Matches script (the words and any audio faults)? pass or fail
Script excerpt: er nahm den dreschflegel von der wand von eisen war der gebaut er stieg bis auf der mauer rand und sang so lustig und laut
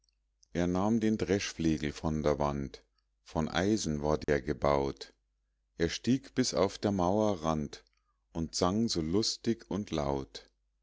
fail